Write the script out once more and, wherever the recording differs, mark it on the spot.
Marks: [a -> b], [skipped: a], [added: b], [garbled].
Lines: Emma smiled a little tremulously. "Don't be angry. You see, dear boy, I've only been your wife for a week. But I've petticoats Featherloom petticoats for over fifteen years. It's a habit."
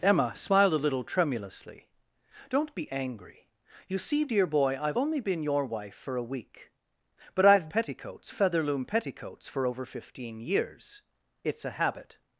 Emma smiled a little tremulously. "Don't be angry. You see, dear boy, I've only been your wife for a week. But I've petticoats Featherloom petticoats for over fifteen years. It's a habit."